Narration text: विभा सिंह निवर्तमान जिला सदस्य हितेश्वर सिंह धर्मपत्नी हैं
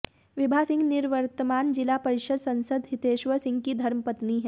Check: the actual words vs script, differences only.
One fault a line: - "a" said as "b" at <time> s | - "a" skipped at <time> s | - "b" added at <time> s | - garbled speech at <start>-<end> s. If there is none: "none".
- "परिषद" added at 2.0 s
- "की" added at 3.6 s